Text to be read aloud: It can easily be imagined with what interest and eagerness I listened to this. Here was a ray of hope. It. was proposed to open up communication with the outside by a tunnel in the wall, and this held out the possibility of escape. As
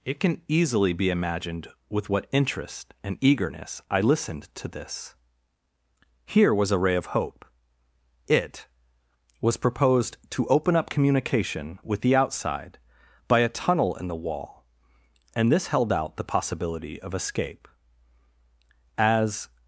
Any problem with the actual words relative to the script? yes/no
no